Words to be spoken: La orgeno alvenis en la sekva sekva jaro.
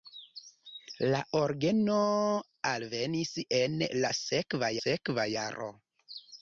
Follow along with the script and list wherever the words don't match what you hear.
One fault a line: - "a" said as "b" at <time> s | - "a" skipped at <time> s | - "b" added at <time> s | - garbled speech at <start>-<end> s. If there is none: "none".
none